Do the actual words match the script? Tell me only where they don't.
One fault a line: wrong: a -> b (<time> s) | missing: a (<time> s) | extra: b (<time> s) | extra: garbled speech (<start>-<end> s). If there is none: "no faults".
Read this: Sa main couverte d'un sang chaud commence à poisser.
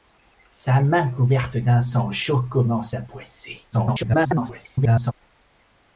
extra: garbled speech (3.7-5.1 s)